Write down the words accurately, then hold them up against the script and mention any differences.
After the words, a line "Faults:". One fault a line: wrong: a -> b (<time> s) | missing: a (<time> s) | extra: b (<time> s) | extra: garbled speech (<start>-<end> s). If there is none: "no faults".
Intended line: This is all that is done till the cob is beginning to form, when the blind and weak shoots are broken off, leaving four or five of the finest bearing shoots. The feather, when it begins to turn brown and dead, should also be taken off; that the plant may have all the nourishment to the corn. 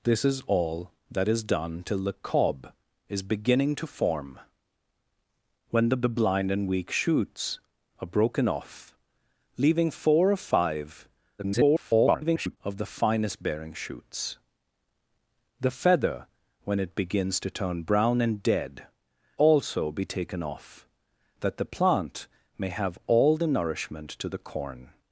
This is all that is done till the cob is beginning to form, when the the blind and weak shoots are broken off, leaving four or five [garbled] of the finest bearing shoots. The feather, when it begins to turn brown and dead, also be taken off; that the plant may have all the nourishment to the corn.
Faults:
extra: the (6.0 s)
extra: garbled speech (11.4-12.6 s)
missing: should (18.9 s)